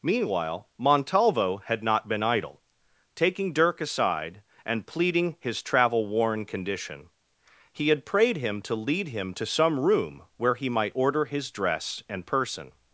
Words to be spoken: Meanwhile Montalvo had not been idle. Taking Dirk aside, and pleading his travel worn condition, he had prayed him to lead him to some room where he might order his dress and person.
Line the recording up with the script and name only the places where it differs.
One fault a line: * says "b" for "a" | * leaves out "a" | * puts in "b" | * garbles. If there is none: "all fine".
all fine